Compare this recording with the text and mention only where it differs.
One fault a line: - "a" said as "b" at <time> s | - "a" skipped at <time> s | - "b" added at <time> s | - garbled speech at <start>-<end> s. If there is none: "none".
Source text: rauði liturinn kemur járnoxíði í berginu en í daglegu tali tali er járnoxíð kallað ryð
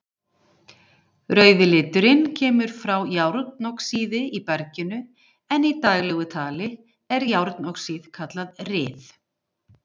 - "frá" added at 2.8 s
- "tali" skipped at 6.7 s